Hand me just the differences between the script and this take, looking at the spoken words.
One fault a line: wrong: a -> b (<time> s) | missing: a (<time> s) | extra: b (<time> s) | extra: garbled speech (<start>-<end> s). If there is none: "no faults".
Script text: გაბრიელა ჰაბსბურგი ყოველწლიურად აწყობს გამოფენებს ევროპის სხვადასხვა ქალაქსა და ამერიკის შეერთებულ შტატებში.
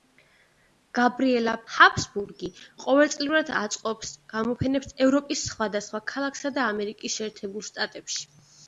no faults